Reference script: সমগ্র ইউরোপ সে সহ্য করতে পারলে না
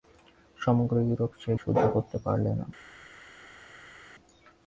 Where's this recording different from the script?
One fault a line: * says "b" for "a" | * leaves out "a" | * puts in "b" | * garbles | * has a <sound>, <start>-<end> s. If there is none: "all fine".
all fine